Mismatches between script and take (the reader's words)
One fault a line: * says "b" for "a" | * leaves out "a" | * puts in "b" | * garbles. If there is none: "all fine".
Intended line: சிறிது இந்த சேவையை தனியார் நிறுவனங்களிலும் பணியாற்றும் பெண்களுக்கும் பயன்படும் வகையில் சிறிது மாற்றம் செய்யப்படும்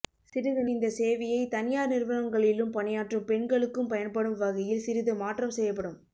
all fine